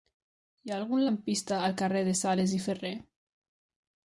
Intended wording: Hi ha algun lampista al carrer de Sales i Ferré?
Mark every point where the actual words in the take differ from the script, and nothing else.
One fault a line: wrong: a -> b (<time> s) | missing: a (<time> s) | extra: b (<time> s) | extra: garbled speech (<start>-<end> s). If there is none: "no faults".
no faults